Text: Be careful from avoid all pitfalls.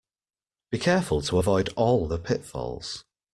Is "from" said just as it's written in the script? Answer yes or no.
no